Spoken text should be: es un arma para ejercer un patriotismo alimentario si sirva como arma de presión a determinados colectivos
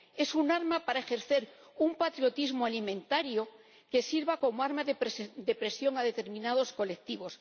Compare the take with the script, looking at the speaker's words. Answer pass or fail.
fail